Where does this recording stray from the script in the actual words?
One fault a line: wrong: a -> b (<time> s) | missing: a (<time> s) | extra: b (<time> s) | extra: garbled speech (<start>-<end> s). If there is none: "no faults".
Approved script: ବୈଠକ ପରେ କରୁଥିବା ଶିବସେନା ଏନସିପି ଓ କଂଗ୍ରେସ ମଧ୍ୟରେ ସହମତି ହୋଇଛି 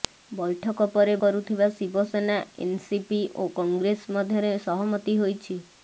no faults